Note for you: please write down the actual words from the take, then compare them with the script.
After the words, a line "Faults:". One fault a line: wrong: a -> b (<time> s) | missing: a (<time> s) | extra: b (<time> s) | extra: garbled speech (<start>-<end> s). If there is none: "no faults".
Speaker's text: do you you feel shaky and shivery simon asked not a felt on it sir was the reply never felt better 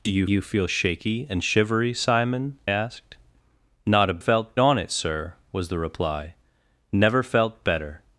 do you you feel shaky and shivery simon asked not a felt on it sir was the reply never felt better
Faults:
no faults